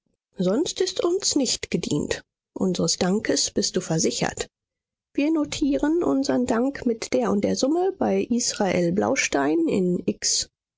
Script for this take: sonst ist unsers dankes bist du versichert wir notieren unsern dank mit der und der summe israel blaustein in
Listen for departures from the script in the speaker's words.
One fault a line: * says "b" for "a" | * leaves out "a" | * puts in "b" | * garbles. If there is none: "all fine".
* puts in "uns nicht gedient"
* puts in "bei"